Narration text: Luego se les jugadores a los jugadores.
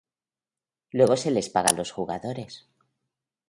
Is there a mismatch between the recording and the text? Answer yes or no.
yes